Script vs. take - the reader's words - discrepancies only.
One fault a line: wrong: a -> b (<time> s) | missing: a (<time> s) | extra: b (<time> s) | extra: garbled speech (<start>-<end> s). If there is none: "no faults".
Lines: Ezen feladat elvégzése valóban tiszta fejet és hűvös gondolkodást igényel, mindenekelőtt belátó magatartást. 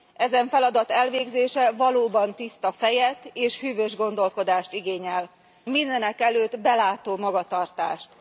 no faults